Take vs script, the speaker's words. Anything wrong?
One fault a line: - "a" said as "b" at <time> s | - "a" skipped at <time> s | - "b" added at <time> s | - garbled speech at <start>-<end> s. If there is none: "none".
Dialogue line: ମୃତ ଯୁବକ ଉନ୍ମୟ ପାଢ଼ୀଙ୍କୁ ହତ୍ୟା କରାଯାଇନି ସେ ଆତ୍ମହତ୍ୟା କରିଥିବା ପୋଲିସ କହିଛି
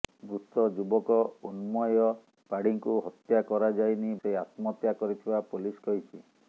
none